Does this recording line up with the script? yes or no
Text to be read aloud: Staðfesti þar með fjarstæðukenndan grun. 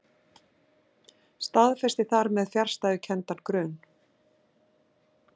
yes